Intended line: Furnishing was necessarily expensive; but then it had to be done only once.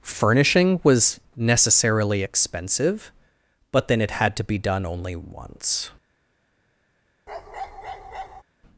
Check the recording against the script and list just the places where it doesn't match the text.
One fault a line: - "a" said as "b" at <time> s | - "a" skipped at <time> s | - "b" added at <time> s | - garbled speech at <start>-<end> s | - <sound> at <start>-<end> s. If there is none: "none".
- bark at 7.3-8.4 s